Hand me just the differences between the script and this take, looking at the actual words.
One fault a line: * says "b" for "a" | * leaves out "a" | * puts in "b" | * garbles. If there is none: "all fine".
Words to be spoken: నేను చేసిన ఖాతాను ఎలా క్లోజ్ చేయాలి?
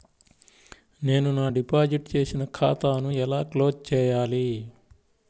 * puts in "నా డిపాజిట్"